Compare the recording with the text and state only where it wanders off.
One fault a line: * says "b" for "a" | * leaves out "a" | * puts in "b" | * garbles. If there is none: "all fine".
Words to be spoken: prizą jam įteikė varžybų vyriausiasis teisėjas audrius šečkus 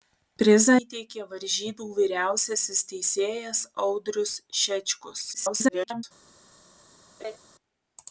* leaves out "jam"
* garbles